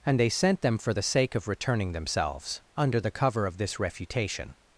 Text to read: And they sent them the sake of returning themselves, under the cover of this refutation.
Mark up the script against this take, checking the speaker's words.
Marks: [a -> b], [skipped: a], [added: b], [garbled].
And they sent them [added: for] the sake of returning themselves, under the cover of this refutation.